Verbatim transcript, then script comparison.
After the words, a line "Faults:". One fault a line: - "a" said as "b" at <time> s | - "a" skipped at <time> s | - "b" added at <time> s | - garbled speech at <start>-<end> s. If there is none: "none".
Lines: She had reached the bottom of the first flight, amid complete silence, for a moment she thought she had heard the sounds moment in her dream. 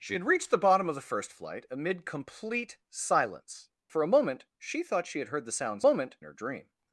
She had reached the bottom of the first flight, amid complete silence, for a moment she thought she had heard the sounds moment in her dream.
Faults:
none